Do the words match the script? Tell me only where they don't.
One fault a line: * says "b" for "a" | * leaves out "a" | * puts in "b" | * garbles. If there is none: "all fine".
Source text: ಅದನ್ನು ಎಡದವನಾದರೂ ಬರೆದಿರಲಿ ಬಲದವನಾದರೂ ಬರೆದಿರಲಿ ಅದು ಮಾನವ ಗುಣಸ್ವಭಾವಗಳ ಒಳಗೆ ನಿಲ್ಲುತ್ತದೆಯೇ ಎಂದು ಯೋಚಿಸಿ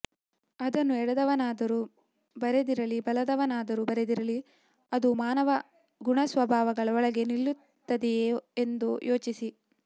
all fine